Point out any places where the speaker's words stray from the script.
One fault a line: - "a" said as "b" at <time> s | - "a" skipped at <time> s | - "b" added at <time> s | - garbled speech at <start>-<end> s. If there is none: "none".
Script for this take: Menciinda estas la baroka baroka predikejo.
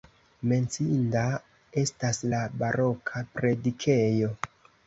- "baroka" skipped at 3.3 s